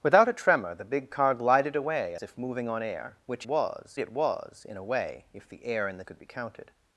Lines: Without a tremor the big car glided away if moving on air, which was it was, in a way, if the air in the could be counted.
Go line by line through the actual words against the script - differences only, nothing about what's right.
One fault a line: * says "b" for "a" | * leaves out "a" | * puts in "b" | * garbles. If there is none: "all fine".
all fine